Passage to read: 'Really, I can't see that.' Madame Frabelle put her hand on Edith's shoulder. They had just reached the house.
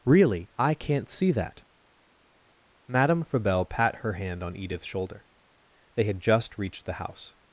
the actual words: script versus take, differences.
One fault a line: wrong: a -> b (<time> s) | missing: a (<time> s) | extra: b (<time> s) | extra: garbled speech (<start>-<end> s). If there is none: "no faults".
wrong: put -> pat (3.7 s)